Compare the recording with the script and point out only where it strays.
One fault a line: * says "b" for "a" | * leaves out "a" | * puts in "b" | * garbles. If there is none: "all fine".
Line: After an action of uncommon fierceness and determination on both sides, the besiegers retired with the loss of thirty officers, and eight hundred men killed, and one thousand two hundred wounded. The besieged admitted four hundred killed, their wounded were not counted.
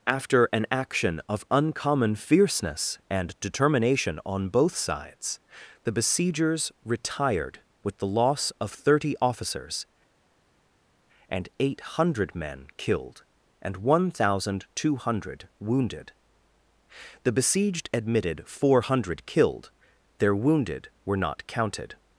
all fine